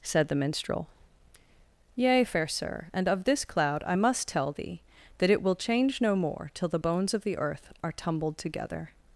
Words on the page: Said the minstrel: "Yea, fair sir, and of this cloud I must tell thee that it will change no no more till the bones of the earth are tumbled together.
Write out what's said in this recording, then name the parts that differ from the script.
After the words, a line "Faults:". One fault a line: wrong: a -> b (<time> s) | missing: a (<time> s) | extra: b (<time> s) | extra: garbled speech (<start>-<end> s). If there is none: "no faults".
Said the minstrel: "Yea, fair sir, and of this cloud I must tell thee that it will change no more till the bones of the earth are tumbled together.
Faults:
missing: no (6.1 s)